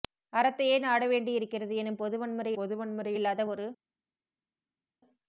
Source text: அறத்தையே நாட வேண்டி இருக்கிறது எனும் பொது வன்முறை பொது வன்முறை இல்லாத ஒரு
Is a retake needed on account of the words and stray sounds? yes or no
no